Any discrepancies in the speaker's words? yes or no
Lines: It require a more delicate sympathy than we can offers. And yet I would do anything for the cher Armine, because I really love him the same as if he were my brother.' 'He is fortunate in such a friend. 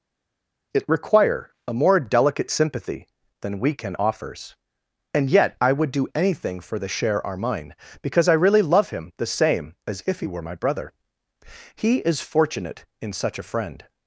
no